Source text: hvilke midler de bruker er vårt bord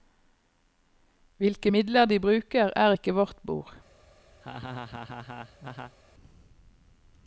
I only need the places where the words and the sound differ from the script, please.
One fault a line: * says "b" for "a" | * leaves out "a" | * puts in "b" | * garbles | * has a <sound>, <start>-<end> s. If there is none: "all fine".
* puts in "ikke"
* has a laugh, 4.4-6.0 s